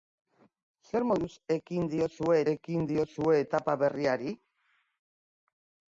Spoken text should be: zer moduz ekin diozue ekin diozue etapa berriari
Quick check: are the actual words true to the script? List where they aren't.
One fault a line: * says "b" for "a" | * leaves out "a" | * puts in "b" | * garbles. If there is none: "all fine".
all fine